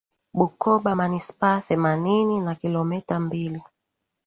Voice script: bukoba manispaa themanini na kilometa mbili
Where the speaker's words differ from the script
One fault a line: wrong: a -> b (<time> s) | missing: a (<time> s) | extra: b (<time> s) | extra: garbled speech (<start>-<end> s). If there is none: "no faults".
no faults